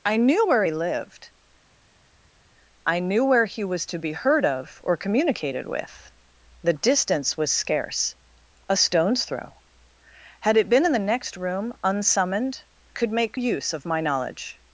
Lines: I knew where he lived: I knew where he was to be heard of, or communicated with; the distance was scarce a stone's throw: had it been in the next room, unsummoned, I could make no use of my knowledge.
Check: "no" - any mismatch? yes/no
yes